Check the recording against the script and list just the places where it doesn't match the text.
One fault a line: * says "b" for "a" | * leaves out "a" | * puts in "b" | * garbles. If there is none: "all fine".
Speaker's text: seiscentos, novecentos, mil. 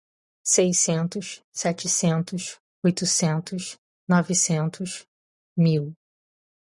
* puts in "setecentos oitocentos"